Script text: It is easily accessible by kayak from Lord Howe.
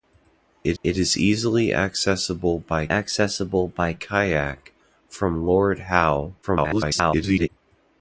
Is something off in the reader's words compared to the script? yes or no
yes